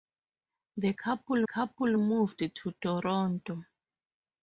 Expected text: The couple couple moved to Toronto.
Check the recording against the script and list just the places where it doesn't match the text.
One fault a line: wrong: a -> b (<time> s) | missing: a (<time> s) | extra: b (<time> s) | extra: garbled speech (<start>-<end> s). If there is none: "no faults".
no faults